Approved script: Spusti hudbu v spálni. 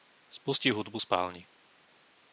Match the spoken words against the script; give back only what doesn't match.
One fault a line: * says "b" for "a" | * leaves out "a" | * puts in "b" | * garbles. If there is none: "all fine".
all fine